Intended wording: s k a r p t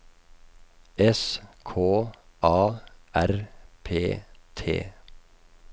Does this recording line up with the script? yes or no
yes